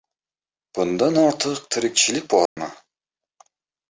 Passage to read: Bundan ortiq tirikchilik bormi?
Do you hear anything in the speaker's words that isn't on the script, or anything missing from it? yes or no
no